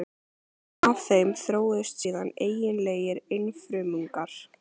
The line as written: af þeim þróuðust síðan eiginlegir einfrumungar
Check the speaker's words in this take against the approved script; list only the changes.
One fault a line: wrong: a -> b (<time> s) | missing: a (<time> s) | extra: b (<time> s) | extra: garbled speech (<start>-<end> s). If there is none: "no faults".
no faults